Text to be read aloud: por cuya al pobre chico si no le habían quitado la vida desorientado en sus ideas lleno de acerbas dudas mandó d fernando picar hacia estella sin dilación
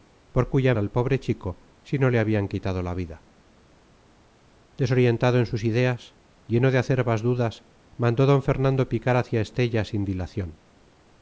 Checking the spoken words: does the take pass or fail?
pass